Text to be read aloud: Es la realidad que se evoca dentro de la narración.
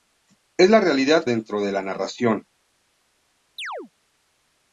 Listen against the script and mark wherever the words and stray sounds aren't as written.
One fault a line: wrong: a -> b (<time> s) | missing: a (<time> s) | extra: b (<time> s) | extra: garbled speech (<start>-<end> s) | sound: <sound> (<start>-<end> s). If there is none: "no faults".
missing: que se evoca (1.3 s)
sound: chirp (3.6-3.9 s)